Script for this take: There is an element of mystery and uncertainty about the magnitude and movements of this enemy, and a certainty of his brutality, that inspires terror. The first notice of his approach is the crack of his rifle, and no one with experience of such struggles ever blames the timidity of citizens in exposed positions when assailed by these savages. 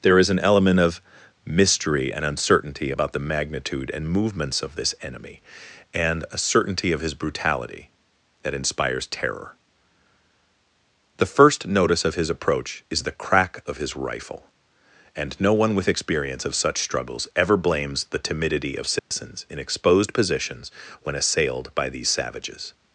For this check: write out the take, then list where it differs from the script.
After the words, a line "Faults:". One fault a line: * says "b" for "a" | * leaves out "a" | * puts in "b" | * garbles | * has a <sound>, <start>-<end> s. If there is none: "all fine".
There is an element of mystery and uncertainty about the magnitude and movements of this enemy, and a certainty of his brutality, that inspires terror. The first notice of his approach is the crack of his rifle, and no one with experience of such struggles ever blames the timidity of citizens in exposed positions when assailed by these savages.
Faults:
* has a dropout, 19.0-19.1 s